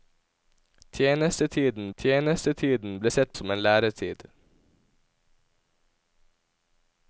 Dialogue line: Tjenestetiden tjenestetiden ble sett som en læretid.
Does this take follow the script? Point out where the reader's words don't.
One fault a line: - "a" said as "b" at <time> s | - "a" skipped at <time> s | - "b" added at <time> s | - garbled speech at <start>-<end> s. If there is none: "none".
none